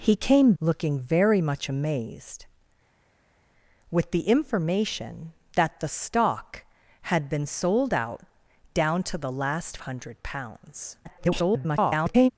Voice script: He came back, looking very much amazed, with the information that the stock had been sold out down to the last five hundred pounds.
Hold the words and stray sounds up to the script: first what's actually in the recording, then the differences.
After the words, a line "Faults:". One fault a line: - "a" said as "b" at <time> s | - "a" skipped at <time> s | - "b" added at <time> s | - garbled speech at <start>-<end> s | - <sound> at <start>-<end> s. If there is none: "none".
He came looking very much amazed, with the information that the stock had been sold out down to the last hundred pounds. [garbled]
Faults:
- "back" skipped at 0.5 s
- "five" skipped at 9.8 s
- garbled speech at 11.0-12.3 s